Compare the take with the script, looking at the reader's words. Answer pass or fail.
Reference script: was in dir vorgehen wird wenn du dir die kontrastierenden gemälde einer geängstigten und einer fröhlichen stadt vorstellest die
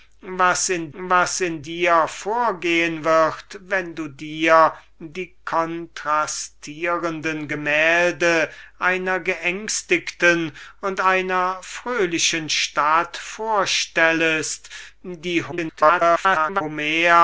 fail